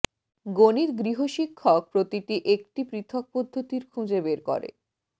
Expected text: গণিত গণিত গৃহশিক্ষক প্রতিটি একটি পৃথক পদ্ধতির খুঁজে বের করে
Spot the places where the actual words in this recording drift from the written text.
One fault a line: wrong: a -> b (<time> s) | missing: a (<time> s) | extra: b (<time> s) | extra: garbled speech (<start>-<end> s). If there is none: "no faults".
missing: গণিত (0.9 s)